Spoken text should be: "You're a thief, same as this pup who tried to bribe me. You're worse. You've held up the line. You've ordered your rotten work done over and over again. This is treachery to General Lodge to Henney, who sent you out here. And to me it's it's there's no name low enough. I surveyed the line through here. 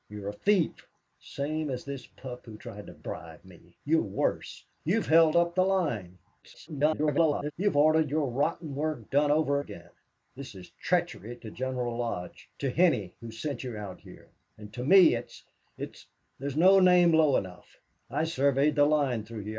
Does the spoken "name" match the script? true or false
true